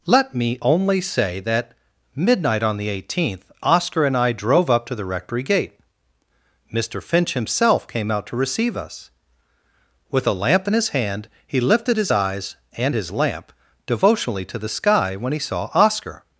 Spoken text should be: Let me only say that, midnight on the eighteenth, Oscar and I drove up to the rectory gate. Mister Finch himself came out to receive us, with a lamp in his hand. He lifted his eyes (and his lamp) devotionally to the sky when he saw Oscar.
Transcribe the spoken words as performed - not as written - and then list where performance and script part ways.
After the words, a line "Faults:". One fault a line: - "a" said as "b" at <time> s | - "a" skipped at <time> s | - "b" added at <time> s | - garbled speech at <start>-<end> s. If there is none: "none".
Let me only say that, midnight on the eighteenth, Oscar and I drove up to the rectory gate. Mister Finch himself came out to receive us, with a lamp in his hand. He lifted his eyes (and his lamp) devotionally to the sky when he saw Oscar.
Faults:
none